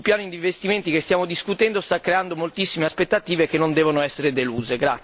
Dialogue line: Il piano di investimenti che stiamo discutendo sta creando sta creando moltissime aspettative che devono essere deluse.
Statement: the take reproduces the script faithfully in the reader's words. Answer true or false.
false